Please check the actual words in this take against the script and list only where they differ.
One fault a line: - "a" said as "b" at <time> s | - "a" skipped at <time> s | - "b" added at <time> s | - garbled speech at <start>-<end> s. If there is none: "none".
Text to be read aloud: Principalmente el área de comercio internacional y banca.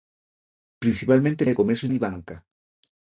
- "área" skipped at 1.5 s
- "internacional" skipped at 1.9 s